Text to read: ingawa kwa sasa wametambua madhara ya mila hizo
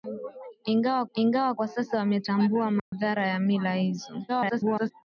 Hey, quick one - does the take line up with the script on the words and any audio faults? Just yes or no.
no